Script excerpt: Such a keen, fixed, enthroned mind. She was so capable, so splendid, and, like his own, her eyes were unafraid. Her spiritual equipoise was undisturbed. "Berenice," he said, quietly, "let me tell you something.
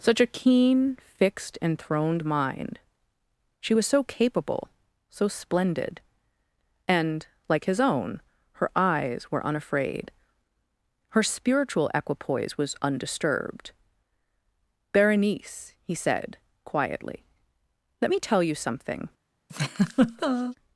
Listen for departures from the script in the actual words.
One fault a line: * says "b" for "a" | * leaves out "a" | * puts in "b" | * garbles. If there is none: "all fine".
all fine